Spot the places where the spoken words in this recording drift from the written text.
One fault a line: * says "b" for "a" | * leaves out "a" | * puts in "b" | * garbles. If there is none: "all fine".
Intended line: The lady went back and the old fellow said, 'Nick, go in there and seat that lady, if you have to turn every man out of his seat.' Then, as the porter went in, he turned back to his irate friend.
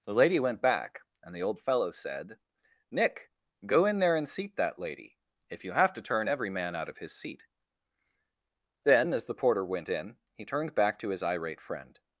all fine